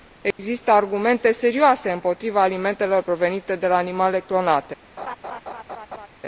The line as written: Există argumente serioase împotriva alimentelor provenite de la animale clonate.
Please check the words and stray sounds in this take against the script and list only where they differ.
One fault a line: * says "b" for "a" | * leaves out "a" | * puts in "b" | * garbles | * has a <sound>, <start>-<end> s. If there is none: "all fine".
* has a dropout, 0.3-0.4 s
* has a laugh, 5.0-6.1 s